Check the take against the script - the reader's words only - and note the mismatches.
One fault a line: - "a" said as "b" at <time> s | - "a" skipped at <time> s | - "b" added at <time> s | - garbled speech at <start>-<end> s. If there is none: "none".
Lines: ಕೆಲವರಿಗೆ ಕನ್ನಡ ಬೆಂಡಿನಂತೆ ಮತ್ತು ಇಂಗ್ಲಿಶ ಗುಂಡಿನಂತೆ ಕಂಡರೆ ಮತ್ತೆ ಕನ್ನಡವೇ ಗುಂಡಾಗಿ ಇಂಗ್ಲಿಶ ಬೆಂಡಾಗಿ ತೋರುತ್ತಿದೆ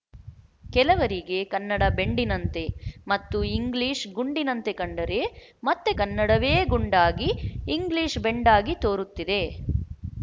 none